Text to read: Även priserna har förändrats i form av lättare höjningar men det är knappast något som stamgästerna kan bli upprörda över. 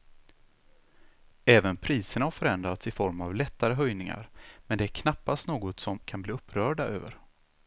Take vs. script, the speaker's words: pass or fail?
fail